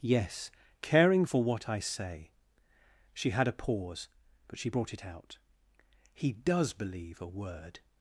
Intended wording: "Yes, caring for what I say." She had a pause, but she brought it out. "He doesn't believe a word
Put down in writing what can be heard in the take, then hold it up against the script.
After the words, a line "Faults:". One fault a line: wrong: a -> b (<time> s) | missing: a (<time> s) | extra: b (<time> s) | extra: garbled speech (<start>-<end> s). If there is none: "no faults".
"Yes, caring for what I say." She had a pause, but she brought it out. "He does believe a word
Faults:
wrong: doesn't -> does (6.3 s)